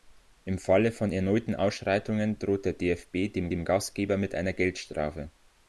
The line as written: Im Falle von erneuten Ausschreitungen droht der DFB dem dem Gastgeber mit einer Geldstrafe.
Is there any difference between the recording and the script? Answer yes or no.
no